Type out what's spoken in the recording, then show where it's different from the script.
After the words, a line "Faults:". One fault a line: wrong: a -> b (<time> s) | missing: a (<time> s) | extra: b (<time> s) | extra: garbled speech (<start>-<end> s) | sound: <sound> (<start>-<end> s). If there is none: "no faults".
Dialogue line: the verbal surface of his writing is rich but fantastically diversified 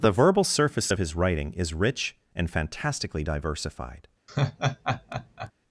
the verbal surface of his writing is rich and fantastically diversified
Faults:
wrong: but -> and (2.3 s)
sound: laugh (4.3-5.5 s)